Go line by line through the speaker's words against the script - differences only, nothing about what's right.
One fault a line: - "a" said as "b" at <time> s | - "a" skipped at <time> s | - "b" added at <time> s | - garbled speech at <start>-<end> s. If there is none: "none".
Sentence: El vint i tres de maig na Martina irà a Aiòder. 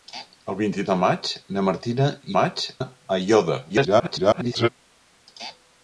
- "tres" skipped at 0.8 s
- "irà" said as "maig" at 2.4 s
- garbled speech at 3.7-4.7 s